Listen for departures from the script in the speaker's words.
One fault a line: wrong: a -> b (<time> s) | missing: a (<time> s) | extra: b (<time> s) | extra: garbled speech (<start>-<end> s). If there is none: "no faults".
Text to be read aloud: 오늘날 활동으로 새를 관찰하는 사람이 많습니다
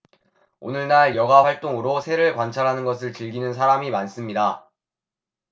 extra: 여가 (1.2 s)
extra: 것을 즐기는 (2.9 s)